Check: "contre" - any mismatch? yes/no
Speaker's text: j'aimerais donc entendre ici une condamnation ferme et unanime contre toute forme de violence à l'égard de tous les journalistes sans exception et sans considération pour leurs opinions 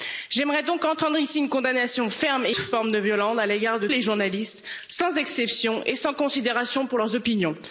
yes